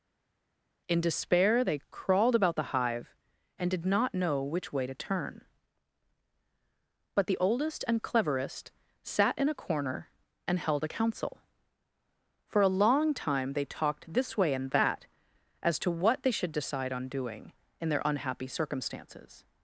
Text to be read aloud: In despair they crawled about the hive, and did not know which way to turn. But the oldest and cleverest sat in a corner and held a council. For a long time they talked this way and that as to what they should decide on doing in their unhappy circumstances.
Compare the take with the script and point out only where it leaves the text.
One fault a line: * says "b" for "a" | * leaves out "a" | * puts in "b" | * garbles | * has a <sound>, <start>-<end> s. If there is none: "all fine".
all fine